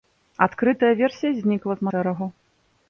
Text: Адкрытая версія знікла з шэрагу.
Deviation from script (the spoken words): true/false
false